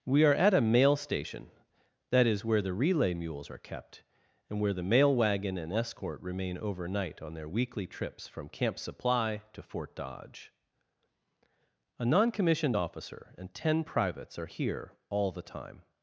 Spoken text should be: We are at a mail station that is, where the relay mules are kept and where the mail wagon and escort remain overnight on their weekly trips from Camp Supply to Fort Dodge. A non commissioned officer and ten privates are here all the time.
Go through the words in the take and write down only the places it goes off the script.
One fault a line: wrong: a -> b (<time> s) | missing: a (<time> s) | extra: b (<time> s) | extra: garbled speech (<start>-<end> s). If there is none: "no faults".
no faults